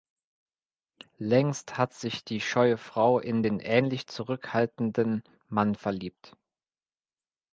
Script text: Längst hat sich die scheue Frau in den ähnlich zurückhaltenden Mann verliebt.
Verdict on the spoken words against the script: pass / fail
pass